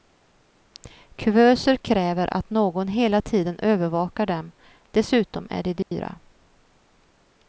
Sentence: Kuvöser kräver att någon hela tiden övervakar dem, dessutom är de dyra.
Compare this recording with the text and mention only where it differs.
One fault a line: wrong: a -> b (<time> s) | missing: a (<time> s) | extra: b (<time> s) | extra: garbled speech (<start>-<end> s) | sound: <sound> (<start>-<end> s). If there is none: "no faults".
sound: dropout (5.8-5.9 s)